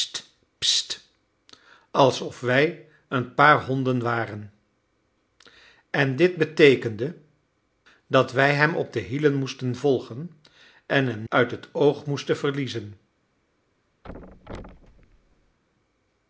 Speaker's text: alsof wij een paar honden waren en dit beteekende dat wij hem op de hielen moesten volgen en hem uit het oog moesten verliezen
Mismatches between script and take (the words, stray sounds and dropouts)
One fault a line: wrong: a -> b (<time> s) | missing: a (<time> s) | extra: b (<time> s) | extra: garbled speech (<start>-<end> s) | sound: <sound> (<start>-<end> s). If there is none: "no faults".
sound: thud (14.0-15.6 s)